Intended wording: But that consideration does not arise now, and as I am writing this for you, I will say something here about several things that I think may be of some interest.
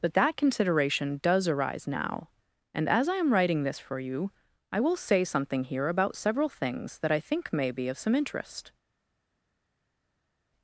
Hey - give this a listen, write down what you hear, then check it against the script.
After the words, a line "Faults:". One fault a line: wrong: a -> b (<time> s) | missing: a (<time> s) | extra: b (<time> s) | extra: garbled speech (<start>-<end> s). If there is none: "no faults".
But that consideration does arise now, and as I am writing this for you, I will say something here about several things that I think may be of some interest.
Faults:
missing: not (1.5 s)